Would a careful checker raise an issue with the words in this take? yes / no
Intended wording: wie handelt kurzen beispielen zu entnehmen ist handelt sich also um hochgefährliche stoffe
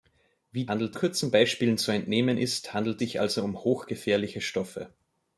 no